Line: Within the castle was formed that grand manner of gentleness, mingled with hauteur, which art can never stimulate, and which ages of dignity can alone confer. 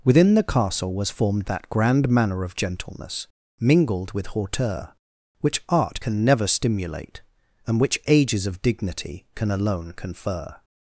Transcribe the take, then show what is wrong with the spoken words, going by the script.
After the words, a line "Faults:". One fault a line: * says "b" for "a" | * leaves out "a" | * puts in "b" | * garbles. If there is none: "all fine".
Within the castle was formed that grand manner of gentleness, mingled with hauteur, which art can never stimulate, and which ages of dignity can alone confer.
Faults:
all fine